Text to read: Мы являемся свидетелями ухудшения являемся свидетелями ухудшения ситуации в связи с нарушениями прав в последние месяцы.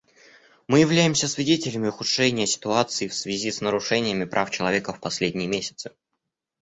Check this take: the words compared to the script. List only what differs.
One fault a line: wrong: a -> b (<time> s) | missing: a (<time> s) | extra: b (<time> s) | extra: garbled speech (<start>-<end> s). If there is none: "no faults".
missing: являемся свидетелями ухудшения (2.5 s)
extra: человека (4.5 s)